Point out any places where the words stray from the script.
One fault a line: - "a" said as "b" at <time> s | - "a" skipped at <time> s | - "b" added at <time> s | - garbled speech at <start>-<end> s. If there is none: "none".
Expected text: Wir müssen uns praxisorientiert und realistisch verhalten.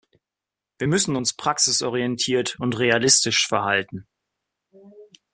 none